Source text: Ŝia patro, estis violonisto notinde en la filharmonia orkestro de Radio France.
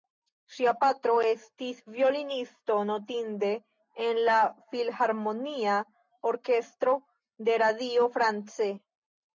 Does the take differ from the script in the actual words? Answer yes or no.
no